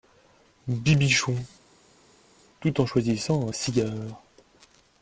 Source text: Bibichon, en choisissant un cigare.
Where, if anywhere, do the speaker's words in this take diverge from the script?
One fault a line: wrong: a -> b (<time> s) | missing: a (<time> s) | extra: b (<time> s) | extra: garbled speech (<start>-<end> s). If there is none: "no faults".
extra: tout (2.6 s)